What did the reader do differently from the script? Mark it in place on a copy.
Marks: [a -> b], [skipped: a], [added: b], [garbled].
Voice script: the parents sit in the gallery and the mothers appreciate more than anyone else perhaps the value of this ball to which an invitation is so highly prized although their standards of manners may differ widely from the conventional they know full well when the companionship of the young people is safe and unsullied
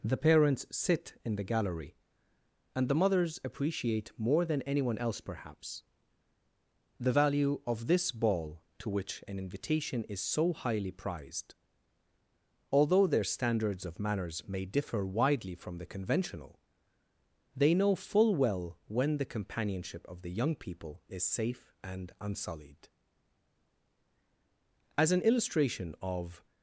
the parents sit in the gallery and the mothers appreciate more than anyone else perhaps the value of this ball to which an invitation is so highly prized although their standards of manners may differ widely from the conventional they know full well when the companionship of the young people is safe and unsullied [added: as an illustration of]